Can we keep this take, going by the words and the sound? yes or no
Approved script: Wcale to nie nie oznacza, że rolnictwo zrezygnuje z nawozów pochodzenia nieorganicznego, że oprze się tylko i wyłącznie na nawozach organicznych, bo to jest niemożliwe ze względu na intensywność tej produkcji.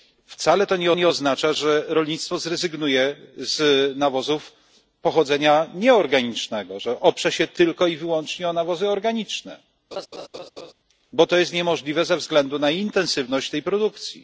no